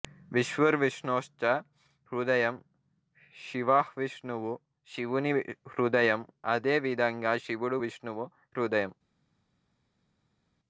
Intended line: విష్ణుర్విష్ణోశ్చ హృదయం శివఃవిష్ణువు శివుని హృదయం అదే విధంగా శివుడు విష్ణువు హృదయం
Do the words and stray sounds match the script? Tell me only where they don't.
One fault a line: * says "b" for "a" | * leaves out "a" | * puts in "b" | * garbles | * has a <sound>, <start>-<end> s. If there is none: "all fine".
all fine